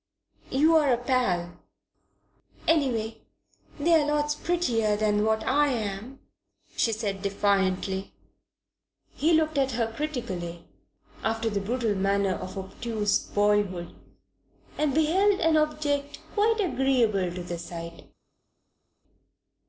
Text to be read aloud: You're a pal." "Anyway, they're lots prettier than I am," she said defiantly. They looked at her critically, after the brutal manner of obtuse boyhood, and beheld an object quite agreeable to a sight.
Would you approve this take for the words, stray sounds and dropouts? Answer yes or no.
no